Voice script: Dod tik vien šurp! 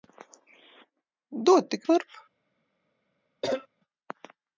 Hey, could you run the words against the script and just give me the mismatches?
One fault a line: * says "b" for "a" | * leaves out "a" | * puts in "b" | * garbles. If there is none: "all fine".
* leaves out "vien"